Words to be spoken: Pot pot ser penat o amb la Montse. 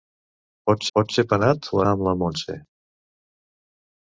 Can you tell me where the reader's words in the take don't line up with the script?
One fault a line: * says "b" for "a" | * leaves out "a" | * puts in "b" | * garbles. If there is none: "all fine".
all fine